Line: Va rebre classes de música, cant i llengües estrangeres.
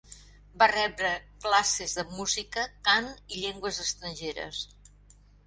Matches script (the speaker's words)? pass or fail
pass